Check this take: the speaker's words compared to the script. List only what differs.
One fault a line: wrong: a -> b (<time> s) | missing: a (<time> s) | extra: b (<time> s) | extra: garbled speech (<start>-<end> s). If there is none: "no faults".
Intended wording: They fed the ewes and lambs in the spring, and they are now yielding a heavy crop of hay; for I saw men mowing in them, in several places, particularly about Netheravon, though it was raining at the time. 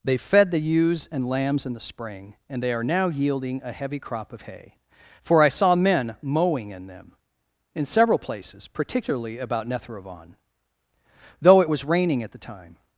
no faults